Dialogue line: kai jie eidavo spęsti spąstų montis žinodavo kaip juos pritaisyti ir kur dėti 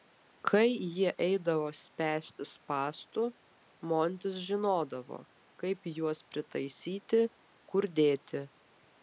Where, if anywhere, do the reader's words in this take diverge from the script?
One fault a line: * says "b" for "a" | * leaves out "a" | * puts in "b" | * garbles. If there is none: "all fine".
* leaves out "ir"